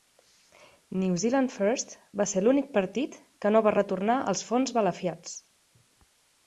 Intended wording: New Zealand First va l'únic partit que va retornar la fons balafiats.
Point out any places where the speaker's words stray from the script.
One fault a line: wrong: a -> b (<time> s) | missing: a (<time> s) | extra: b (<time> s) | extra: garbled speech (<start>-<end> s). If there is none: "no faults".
extra: ser (2.3 s)
extra: no (3.5 s)
wrong: la -> els (4.4 s)